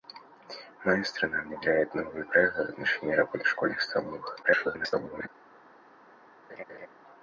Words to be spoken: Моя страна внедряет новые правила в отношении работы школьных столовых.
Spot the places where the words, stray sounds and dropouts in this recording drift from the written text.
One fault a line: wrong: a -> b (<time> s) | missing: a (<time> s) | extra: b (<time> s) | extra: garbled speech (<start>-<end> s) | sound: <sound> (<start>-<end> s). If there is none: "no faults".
extra: garbled speech (4.4-5.3 s)
sound: laugh (6.5-6.9 s)